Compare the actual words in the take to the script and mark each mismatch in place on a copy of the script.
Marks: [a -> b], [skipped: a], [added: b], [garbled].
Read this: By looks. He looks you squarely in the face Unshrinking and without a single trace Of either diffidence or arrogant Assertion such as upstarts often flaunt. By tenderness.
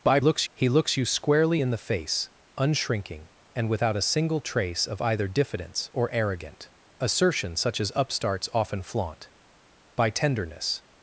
By looks. He looks you squarely in the face Unshrinking and without a single trace Of either diffidence or arrogant Assertion such as upstarts often flaunt. By tenderness.